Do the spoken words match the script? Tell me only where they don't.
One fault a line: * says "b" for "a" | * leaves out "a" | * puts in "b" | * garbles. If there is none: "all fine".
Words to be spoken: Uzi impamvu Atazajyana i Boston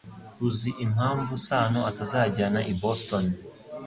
* puts in "Sano"